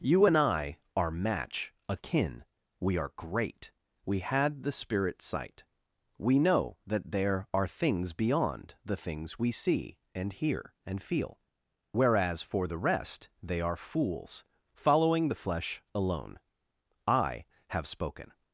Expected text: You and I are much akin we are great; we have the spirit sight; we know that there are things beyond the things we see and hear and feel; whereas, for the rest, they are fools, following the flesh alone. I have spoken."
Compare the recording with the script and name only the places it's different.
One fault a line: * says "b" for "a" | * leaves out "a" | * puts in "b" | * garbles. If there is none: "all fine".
* says "match" for "much"
* says "had" for "have"